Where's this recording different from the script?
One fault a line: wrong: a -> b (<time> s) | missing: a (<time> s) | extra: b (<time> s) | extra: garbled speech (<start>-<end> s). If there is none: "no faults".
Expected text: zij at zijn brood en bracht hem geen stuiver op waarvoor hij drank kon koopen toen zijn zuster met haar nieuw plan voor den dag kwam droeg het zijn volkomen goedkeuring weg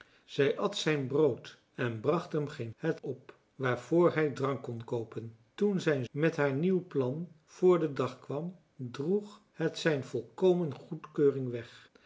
wrong: stuiver -> het (2.8 s)
missing: zuster (6.1 s)